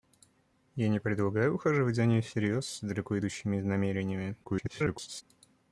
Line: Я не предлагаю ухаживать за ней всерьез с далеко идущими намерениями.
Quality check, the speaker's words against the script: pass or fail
fail